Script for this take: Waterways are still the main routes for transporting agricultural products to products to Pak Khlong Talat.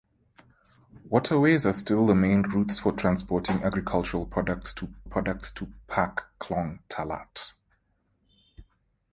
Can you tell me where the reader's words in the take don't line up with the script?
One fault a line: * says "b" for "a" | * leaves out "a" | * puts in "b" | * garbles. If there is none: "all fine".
all fine